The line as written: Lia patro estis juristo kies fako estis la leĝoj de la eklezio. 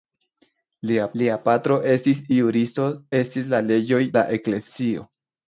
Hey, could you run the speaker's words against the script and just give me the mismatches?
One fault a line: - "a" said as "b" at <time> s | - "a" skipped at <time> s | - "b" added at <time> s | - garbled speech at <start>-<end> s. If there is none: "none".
- "lia" added at 1.2 s
- "kies fako" skipped at 2.9 s
- "de" skipped at 4.0 s